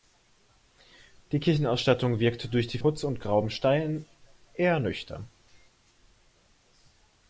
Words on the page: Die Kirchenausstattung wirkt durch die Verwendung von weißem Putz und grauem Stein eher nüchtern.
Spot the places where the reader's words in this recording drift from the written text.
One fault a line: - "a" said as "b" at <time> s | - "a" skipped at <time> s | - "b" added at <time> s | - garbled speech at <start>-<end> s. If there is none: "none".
- "Verwendung von weißem" skipped at 2.8 s